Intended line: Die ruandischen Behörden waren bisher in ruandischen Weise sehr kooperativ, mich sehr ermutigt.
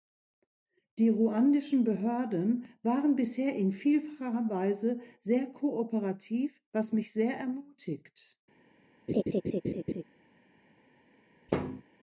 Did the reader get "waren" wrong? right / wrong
right